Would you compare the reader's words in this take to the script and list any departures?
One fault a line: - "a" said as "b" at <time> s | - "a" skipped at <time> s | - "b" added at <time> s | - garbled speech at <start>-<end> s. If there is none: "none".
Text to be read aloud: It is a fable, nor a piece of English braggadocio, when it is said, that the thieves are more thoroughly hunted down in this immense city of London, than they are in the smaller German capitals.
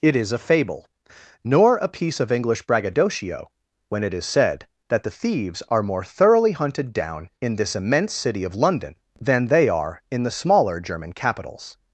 none